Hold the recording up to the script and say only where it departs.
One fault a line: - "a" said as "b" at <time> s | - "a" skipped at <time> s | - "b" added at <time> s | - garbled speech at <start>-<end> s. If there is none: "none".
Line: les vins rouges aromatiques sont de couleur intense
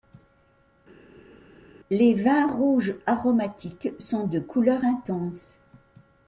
none